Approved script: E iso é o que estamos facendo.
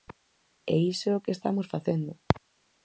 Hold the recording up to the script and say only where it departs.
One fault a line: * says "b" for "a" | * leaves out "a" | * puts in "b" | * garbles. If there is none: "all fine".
all fine